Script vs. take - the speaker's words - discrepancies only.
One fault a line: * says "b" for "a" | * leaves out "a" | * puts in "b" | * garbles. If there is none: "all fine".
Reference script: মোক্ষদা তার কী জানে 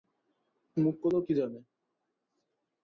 * leaves out "তার"